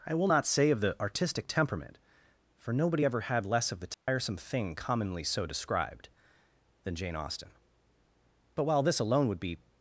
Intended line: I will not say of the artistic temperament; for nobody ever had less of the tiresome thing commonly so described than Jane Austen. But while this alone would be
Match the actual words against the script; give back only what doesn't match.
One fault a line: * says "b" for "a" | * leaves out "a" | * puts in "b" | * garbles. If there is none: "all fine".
all fine